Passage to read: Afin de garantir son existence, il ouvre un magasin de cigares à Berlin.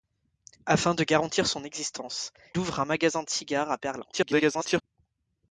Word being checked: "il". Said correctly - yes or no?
no